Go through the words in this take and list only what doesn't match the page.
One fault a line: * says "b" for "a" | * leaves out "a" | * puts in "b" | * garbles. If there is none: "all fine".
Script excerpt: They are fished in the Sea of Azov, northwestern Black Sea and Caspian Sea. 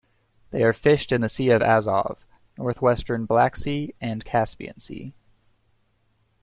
all fine